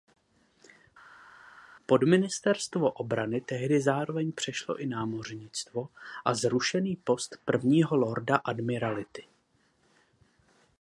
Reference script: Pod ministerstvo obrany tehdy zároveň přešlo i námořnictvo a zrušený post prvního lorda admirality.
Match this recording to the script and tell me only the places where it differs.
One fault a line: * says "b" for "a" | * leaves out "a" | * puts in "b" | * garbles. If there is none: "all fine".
all fine